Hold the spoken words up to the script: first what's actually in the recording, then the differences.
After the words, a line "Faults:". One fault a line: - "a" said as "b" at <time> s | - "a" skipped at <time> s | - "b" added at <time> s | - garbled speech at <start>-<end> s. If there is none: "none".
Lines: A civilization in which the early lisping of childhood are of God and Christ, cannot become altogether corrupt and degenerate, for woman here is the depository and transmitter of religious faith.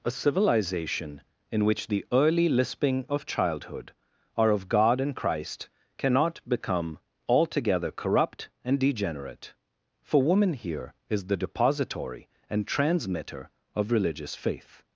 A civilization in which the early lisping of childhood are of God and Christ, cannot become altogether corrupt and degenerate, for woman here is the depository and transmitter of religious faith.
Faults:
none